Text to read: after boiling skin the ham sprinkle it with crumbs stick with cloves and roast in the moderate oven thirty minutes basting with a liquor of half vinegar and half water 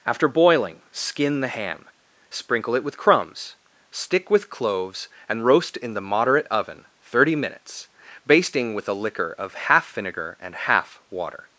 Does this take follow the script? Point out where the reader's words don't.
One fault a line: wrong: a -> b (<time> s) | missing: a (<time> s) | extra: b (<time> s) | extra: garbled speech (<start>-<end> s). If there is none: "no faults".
no faults